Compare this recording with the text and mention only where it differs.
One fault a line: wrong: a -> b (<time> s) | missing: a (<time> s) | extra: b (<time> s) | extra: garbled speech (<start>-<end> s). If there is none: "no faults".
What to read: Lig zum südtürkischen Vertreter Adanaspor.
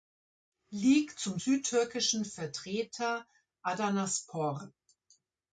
no faults